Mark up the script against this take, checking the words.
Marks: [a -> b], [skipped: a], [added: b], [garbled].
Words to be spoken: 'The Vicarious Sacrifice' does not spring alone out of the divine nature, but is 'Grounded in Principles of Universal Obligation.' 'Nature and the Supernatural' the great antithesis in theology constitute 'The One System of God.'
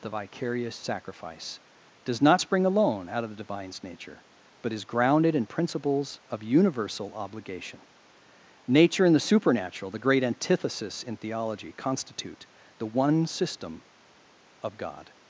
'The Vicarious Sacrifice' does not spring alone out of the [divine -> divines] nature, but is 'Grounded in Principles of Universal Obligation.' 'Nature and the Supernatural' the great antithesis in theology constitute 'The One System of God.'